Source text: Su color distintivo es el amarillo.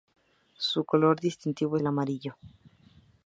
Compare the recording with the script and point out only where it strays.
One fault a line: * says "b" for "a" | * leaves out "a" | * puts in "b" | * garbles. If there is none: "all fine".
* leaves out "es"